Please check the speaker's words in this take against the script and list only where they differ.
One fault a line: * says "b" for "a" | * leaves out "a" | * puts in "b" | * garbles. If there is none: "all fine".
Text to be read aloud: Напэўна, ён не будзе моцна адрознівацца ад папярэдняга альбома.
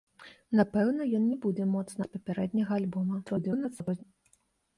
* leaves out "адрознівацца"
* garbles